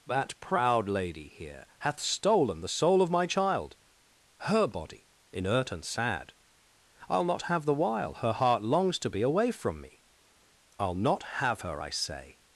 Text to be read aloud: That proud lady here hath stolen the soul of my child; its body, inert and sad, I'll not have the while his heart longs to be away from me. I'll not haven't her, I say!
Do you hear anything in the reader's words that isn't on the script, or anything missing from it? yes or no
yes